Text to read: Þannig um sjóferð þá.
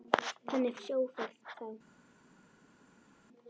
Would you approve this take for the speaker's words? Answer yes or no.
yes